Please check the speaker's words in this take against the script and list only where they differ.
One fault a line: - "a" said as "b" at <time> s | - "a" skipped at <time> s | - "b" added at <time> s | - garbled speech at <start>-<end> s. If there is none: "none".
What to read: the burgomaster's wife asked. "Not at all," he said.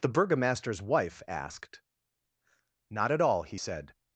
none